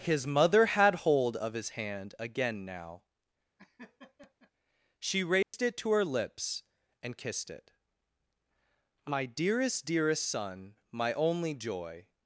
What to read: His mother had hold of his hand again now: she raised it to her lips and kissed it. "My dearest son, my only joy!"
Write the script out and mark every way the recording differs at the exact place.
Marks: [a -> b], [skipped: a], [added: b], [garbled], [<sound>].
His mother had hold of his hand again now: [laugh] she raised [dropout] it to her lips and kissed it. "My dearest [added: dearest] son, my only joy!"